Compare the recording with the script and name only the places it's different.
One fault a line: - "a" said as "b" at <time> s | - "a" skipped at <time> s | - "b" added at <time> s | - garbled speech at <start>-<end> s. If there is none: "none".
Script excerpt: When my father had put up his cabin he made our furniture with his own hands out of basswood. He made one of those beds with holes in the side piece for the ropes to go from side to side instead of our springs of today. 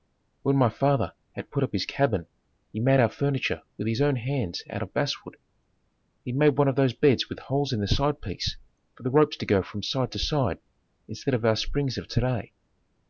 none